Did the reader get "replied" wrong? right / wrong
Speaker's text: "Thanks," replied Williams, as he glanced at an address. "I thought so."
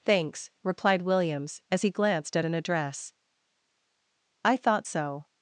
right